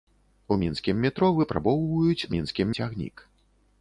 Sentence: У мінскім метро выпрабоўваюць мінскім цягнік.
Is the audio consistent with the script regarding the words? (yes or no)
yes